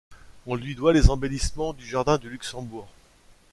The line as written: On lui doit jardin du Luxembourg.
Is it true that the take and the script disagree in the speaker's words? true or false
true